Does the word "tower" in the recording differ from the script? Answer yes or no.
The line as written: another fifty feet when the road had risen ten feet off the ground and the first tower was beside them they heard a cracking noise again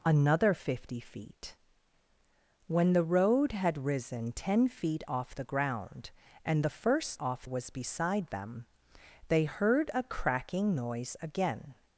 yes